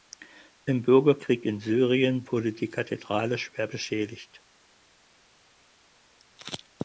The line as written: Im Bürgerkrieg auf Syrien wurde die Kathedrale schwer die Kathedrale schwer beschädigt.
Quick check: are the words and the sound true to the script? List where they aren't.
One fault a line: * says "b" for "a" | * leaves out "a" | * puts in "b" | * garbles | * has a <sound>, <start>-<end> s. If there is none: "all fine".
* says "in" for "auf"
* leaves out "die Kathedrale schwer"